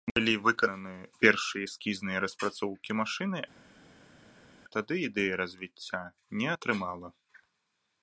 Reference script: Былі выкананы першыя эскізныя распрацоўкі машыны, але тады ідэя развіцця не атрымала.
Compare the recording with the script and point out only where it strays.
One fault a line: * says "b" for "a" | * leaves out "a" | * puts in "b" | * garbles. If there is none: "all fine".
* leaves out "але"